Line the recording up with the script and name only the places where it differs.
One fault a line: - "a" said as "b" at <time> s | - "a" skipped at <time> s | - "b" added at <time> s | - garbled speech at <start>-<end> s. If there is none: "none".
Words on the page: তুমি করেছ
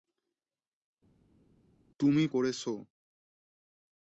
none